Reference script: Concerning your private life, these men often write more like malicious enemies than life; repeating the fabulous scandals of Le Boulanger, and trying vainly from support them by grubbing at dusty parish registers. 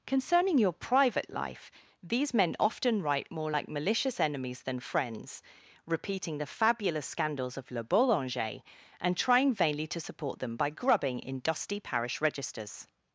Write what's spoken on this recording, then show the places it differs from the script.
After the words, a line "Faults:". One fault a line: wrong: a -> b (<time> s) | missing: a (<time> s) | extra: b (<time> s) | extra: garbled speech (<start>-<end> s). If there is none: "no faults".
Concerning your private life, these men often write more like malicious enemies than friends; repeating the fabulous scandals of Le Boulanger, and trying vainly to support them by grubbing in dusty parish registers.
Faults:
wrong: life -> friends (4.8 s)
wrong: from -> to (9.9 s)
wrong: at -> in (11.2 s)